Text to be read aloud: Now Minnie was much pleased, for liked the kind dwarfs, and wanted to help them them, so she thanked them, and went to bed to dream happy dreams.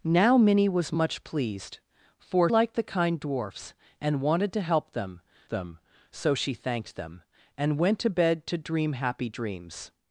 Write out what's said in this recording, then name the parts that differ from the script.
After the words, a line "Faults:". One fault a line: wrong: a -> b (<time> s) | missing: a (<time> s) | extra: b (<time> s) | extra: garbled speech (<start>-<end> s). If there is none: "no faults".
Now Minnie was much pleased, for liked the kind dwarfs, and wanted to help them them, so she thanked them, and went to bed to dream happy dreams.
Faults:
no faults